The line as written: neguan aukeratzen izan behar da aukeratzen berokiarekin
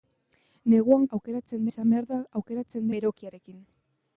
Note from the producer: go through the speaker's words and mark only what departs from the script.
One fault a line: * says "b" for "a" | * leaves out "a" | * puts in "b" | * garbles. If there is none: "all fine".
all fine